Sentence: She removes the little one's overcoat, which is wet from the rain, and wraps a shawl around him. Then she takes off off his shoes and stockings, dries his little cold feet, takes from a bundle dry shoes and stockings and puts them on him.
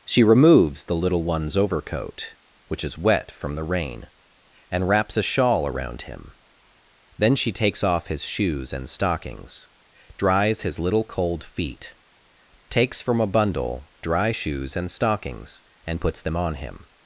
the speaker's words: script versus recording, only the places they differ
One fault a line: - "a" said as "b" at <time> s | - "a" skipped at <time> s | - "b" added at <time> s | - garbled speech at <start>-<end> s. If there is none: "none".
- "off" skipped at 8.1 s